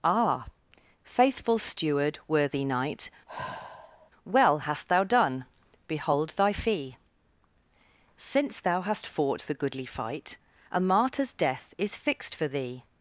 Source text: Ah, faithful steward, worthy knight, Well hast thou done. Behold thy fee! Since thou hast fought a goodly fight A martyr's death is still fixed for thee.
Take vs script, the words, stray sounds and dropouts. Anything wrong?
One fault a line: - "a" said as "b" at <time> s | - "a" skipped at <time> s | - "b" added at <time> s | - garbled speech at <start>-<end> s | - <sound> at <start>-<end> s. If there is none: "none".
- sigh at 3.3-4.1 s
- "a" said as "the" at 9.4 s
- "still" skipped at 12.0 s